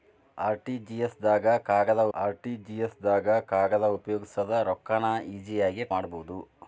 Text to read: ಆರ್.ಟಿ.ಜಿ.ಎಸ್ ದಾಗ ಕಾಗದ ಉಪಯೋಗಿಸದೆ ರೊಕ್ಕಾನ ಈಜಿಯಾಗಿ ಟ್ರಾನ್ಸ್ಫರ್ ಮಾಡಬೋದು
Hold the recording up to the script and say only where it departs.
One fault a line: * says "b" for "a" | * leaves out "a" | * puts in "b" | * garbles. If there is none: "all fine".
* puts in "ಆರ್.ಟಿ.ಜಿ.ಎಸ್ ದಾಗ ಕಾಗದ"
* leaves out "ಟ್ರಾನ್ಸ್ಫರ್"